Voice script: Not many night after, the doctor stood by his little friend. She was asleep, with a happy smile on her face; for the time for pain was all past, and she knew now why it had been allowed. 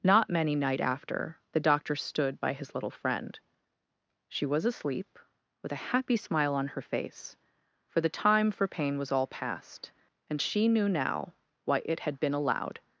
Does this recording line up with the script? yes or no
yes